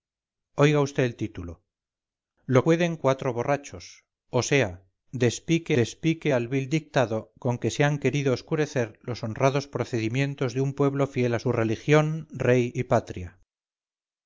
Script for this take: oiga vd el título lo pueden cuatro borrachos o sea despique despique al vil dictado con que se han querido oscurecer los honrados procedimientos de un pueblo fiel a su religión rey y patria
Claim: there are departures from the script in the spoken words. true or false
false